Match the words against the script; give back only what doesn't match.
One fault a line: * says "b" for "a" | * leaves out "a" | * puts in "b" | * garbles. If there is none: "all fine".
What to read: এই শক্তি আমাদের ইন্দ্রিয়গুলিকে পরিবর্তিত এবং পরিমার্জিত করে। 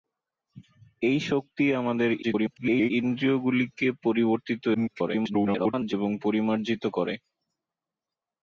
* garbles
* garbles